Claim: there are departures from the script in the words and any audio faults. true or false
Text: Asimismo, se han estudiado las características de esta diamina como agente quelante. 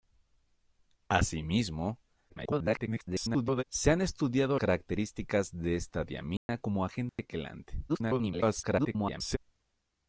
true